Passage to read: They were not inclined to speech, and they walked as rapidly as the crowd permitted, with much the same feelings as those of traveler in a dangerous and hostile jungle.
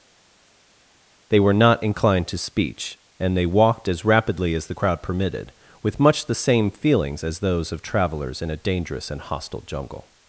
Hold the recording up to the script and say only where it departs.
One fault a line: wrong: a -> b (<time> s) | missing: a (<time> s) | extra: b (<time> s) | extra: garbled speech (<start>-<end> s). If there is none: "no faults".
wrong: traveler -> travelers (7.8 s)